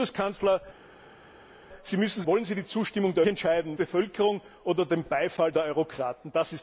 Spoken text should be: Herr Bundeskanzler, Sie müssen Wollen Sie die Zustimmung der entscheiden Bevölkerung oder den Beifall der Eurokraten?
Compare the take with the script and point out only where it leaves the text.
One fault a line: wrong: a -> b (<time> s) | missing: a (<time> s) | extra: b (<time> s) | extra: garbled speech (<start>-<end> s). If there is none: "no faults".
no faults